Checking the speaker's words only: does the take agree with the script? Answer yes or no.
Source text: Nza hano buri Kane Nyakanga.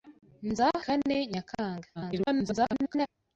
no